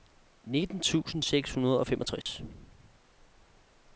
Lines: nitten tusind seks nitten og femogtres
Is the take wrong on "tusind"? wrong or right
right